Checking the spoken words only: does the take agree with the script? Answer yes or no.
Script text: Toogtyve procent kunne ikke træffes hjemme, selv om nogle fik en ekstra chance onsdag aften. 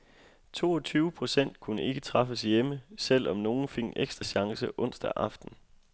yes